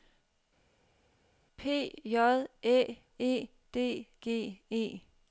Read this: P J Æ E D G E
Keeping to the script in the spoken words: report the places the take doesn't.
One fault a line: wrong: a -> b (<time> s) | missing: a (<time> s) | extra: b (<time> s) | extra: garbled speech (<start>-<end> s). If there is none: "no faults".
no faults